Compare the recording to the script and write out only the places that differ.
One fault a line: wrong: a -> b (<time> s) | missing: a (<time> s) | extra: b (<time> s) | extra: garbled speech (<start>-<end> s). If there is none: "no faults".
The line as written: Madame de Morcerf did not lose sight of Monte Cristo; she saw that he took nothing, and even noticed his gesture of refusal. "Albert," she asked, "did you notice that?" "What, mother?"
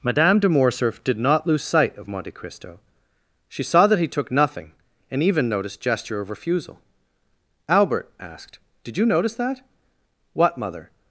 missing: his (5.8 s)
missing: she (8.1 s)